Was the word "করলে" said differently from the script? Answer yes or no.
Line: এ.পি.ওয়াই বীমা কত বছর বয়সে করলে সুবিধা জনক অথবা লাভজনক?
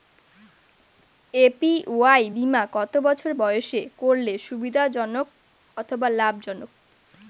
no